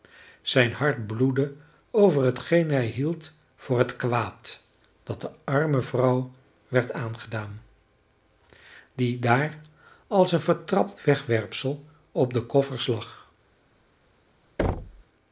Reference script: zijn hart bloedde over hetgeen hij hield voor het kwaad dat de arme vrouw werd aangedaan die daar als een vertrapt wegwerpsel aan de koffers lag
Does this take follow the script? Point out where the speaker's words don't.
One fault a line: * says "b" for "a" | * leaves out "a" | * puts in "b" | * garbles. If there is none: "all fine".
* says "op" for "aan"